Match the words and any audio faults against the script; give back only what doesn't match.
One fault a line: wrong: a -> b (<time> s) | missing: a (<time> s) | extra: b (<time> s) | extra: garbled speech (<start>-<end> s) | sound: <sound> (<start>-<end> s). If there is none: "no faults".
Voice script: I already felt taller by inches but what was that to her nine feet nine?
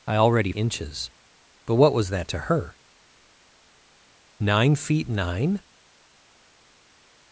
missing: felt taller by (0.5 s)